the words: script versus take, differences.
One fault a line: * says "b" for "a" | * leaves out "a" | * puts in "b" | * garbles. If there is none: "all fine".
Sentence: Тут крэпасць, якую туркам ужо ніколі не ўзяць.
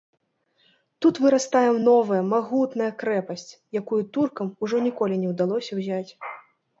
* puts in "вырастае новая магутная"
* puts in "ўдалося"